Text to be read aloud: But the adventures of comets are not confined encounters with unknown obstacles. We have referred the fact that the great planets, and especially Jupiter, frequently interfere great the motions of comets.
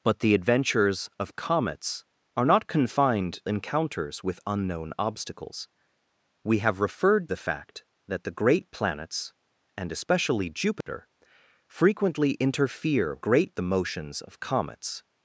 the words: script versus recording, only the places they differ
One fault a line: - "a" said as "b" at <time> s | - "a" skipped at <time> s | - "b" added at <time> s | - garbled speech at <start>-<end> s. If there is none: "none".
none